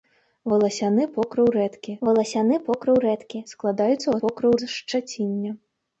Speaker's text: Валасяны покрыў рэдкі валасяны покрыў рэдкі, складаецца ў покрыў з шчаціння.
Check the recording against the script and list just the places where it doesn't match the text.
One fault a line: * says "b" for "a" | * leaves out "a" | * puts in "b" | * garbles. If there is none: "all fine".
all fine